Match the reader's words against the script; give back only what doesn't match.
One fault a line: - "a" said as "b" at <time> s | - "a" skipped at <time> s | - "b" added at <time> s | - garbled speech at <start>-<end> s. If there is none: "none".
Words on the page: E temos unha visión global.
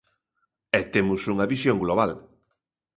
none